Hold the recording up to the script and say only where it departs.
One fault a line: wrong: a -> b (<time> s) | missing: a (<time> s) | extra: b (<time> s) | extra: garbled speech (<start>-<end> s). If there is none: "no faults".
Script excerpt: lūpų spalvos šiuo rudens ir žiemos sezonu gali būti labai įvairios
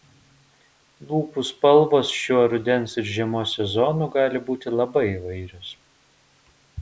no faults